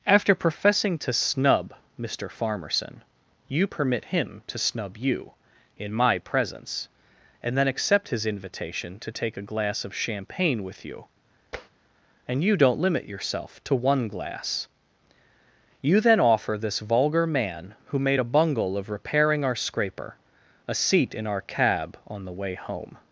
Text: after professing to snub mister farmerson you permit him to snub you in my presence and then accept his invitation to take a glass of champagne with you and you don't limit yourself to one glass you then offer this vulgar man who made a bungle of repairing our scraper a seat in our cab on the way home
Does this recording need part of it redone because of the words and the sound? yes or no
yes